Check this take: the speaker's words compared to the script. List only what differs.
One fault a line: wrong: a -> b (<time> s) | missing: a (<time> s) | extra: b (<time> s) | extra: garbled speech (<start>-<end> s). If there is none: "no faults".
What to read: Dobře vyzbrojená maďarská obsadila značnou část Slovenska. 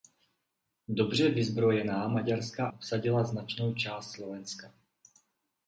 no faults